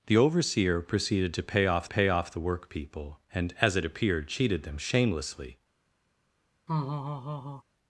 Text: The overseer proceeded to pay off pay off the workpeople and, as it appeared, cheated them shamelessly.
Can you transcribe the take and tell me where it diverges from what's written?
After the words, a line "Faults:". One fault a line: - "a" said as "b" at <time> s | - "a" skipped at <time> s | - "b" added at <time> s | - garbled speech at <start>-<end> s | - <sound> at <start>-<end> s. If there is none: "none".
The overseer proceeded to pay off pay off the workpeople and, as it appeared, cheated them shamelessly.
Faults:
- laugh at 6.7-7.6 s